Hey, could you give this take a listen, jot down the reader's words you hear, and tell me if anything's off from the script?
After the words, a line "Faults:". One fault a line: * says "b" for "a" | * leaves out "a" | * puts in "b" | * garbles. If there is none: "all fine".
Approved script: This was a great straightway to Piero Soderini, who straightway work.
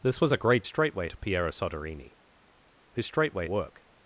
This was a great straightway to Piero Soderini, who straightway work.
Faults:
all fine